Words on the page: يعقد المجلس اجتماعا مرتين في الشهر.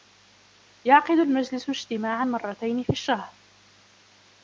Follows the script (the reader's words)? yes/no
yes